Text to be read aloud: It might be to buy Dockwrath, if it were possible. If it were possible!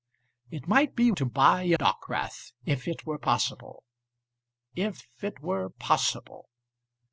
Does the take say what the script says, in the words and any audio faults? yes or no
yes